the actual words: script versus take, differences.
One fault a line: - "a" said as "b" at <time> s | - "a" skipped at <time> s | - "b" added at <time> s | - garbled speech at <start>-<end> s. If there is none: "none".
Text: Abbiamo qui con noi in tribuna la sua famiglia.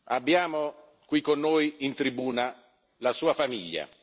none